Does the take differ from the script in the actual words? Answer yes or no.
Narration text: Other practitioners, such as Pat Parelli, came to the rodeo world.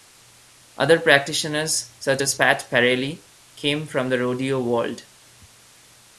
yes